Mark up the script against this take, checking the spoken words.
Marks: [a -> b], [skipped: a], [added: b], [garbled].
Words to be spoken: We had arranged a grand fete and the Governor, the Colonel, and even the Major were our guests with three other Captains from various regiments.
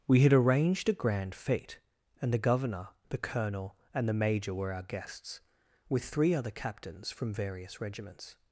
We had arranged a grand fete and the Governor, the Colonel, and [skipped: even] the Major were our guests with three other Captains from various regiments.